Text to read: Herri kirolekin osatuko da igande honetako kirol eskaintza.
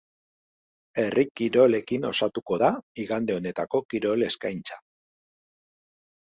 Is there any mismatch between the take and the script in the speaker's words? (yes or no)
no